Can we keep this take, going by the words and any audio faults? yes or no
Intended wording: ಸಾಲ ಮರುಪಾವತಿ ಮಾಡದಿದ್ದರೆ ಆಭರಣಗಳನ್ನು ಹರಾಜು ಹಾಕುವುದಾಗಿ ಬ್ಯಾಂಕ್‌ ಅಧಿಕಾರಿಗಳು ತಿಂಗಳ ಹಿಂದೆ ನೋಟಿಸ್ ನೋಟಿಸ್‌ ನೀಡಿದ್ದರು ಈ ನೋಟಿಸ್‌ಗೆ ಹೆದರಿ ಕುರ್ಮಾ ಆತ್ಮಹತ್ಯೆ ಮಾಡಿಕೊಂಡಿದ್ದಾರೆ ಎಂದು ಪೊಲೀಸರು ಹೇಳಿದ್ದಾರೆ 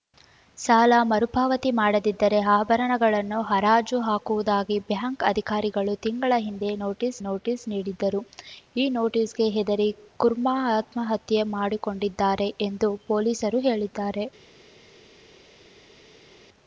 yes